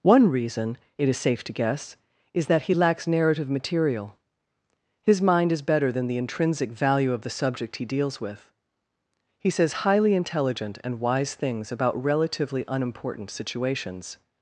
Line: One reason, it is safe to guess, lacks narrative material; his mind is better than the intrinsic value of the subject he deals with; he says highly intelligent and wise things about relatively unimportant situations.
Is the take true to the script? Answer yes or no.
no